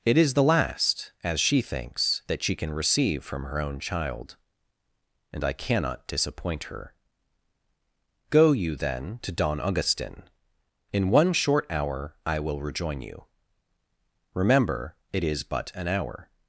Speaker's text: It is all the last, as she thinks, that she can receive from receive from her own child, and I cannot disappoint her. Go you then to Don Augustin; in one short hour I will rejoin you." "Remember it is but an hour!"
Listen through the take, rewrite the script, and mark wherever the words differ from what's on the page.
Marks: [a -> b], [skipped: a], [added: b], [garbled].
It is [skipped: all] the last, as she thinks, that she can receive from [skipped: receive from] her own child, and I cannot disappoint her. Go you then to Don Augustin; in one short hour I will rejoin you." "Remember it is but an hour!"